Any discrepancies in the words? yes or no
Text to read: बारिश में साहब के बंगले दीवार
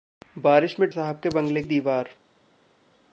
no